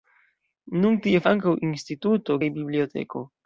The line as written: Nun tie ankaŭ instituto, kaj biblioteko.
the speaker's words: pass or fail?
pass